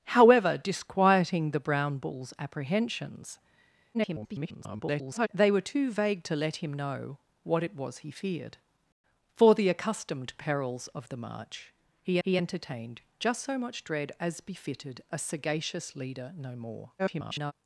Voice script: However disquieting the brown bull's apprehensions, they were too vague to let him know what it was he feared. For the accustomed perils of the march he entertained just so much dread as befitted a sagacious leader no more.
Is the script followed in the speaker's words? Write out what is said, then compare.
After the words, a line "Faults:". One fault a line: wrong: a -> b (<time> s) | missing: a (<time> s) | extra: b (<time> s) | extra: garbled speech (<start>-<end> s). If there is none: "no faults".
However disquieting the brown bull's apprehensions, [garbled] they were too vague to let him know what it was he feared. For the accustomed perils of the march he he entertained just so much dread as befitted a sagacious leader no more. [garbled]
Faults:
extra: garbled speech (3.9-5.3 s)
extra: he (12.2 s)
extra: garbled speech (17.0-17.5 s)